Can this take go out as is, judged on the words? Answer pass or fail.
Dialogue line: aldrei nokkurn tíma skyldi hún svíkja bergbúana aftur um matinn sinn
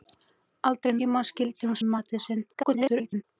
fail